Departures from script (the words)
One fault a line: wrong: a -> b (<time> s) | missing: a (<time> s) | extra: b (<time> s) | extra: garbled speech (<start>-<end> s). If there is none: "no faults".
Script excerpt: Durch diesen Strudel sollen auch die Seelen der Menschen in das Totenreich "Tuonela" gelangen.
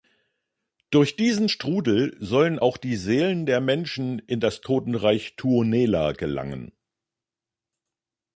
no faults